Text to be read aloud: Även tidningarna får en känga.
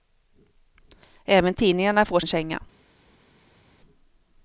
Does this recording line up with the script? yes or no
yes